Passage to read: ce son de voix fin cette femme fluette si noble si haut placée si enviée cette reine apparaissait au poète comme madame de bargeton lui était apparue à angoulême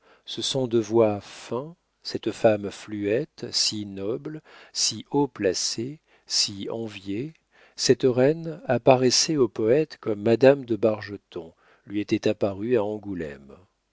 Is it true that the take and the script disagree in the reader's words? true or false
false